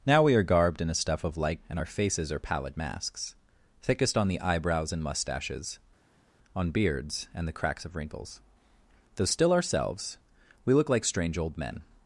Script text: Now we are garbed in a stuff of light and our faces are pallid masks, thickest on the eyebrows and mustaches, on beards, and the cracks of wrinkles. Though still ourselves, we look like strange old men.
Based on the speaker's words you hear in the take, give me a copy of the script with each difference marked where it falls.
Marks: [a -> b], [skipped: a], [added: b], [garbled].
Now we are garbed in a stuff of light and our faces are pallid masks, thickest on the eyebrows and mustaches, on beards, and the cracks of wrinkles. Though still ourselves, we look like strange old men.